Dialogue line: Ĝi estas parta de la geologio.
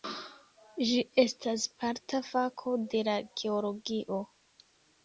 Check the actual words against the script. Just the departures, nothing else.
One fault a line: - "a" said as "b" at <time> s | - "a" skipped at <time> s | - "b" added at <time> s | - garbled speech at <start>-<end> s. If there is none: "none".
- "fako" added at 2.3 s